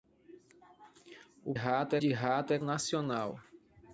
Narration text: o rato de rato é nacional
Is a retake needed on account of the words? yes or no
no